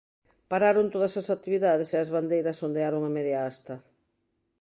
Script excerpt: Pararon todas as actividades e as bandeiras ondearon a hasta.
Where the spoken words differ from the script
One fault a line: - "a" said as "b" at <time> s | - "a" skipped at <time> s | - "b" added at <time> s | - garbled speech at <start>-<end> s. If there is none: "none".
- "media" added at 3.2 s